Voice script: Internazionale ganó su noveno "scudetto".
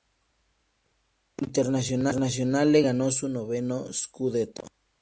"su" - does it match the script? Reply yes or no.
yes